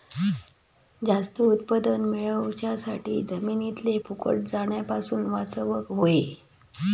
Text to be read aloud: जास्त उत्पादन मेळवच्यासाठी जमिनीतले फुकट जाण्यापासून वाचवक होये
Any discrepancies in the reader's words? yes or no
no